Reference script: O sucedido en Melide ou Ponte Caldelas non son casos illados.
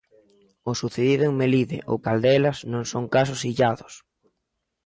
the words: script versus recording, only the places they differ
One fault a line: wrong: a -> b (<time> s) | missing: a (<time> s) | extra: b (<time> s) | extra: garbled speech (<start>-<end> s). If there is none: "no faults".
missing: Ponte (2.0 s)